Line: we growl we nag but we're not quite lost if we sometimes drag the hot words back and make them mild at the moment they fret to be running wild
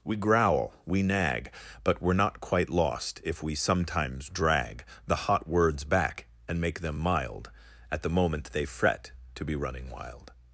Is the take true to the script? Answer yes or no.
yes